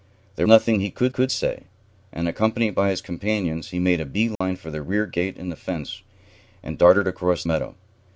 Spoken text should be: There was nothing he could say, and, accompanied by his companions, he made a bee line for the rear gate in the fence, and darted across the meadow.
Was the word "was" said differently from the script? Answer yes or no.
yes